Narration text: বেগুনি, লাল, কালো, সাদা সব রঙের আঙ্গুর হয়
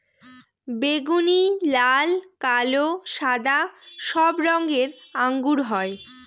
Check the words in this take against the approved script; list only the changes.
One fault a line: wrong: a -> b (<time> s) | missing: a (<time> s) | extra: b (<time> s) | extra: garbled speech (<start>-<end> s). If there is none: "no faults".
no faults